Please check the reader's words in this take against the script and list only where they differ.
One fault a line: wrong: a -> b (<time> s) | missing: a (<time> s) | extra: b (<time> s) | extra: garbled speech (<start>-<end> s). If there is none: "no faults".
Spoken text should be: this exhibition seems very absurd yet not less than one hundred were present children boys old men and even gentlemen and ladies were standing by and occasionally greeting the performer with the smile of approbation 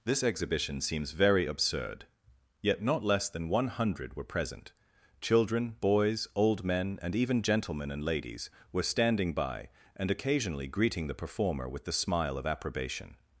no faults